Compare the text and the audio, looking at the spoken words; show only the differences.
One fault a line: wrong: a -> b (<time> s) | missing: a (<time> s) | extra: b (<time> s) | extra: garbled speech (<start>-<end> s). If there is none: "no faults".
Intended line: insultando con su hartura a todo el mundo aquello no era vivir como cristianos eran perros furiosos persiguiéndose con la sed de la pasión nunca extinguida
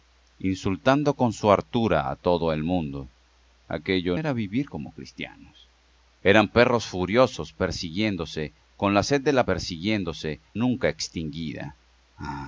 missing: no (4.2 s)
wrong: pasión -> persiguiéndose (9.4 s)